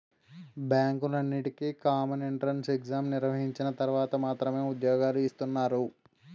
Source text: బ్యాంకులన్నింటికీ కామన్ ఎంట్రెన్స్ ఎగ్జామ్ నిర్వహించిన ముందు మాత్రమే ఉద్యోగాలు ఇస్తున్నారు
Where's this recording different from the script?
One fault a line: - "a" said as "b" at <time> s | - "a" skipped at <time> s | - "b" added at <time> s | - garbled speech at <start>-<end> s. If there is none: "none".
- "ముందు" said as "తర్వాత" at 3.8 s